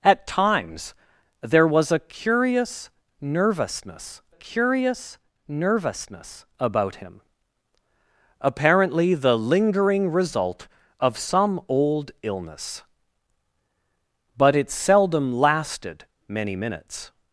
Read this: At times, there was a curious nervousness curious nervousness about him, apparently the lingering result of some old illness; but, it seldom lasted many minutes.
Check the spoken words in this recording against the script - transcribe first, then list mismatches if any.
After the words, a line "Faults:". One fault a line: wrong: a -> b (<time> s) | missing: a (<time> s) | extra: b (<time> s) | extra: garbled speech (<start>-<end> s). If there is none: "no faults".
At times, there was a curious nervousness curious nervousness about him, apparently the lingering result of some old illness; but, it seldom lasted many minutes.
Faults:
no faults